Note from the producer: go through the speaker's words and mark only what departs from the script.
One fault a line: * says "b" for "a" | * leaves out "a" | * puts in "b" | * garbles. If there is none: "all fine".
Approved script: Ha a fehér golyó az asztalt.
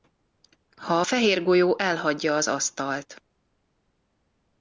* puts in "elhagyja"